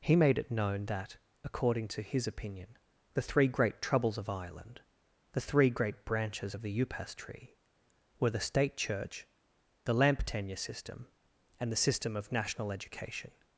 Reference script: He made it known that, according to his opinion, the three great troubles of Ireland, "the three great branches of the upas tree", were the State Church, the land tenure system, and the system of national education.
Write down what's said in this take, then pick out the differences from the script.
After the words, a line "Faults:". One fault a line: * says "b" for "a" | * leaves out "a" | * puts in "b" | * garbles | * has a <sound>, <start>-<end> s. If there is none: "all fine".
He made it known that, according to his opinion, the three great troubles of Ireland, "the three great branches of the upas tree", were the State Church, the lamp tenure system, and the system of national education.
Faults:
* says "lamp" for "land"